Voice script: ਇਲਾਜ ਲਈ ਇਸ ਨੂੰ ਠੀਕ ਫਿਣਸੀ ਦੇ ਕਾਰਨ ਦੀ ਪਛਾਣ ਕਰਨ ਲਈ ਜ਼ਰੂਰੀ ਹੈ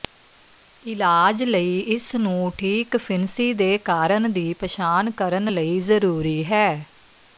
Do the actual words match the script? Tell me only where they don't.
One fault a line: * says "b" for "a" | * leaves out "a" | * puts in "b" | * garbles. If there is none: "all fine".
all fine